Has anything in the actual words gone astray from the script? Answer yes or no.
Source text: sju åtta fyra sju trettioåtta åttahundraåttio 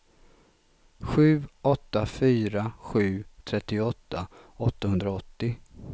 no